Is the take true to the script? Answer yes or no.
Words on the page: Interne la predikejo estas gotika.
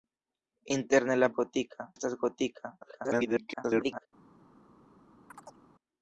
no